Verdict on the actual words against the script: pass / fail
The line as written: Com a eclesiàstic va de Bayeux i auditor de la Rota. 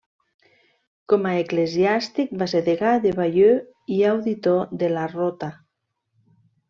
fail